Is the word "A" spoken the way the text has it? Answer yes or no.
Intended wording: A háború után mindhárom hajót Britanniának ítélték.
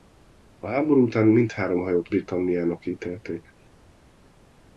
yes